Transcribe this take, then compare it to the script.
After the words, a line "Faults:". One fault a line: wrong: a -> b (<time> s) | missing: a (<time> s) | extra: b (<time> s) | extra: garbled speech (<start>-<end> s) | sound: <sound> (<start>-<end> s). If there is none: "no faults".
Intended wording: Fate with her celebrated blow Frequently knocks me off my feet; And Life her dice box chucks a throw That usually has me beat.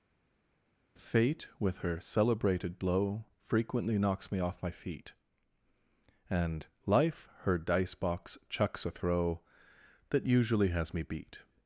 Fate with her celebrated blow Frequently knocks me off my feet; And Life her dice box chucks a throw That usually has me beat.
Faults:
no faults